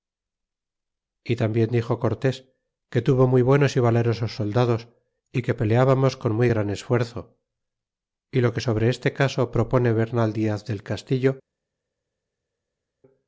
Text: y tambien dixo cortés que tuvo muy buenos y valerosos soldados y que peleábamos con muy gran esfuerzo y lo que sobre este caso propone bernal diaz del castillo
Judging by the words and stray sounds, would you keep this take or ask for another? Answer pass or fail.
pass